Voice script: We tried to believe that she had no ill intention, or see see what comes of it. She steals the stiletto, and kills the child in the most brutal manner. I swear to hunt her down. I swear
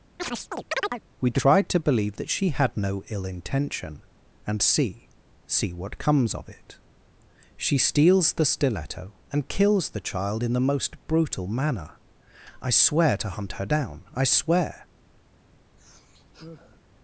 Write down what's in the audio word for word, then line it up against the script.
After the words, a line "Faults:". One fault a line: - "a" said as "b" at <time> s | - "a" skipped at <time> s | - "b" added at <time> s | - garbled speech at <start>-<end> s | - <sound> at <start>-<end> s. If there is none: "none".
We tried to believe that she had no ill intention, and see see what comes of it. She steals the stiletto, and kills the child in the most brutal manner. I swear to hunt her down. I swear
Faults:
- chirp at 0.2-1.0 s
- "or" said as "and" at 4.5 s
- sigh at 15.8-16.8 s